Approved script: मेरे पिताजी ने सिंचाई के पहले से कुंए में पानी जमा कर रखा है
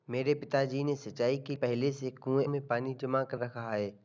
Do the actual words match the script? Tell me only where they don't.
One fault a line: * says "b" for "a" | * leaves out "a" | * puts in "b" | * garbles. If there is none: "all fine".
all fine